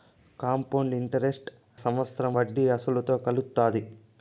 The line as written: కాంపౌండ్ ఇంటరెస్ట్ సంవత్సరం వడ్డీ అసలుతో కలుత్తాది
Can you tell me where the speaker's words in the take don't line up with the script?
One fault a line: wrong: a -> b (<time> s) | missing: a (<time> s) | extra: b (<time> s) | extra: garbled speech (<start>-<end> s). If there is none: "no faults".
no faults